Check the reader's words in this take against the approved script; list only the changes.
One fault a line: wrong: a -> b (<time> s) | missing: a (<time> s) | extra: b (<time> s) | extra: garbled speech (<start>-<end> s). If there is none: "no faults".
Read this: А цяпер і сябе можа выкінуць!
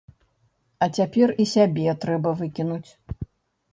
wrong: можа -> трэба (2.0 s)